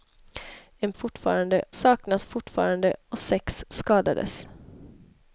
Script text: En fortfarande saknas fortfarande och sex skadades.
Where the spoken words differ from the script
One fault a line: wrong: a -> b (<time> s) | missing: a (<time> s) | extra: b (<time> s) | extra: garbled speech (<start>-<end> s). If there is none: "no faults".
no faults